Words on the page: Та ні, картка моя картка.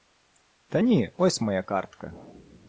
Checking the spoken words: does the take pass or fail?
fail